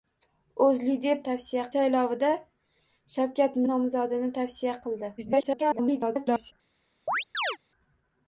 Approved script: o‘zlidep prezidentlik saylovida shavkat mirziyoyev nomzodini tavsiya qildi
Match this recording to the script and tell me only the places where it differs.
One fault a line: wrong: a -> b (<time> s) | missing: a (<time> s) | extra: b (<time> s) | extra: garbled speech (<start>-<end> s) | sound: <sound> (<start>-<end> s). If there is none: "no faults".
wrong: prezidentlik -> tavsiya (1.3 s)
missing: mirziyoyev (3.6 s)
extra: garbled speech (5.2-6.5 s)
sound: chirp (7.1-7.6 s)